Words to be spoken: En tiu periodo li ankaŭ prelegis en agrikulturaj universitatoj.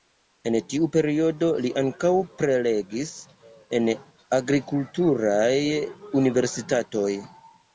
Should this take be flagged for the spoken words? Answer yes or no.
no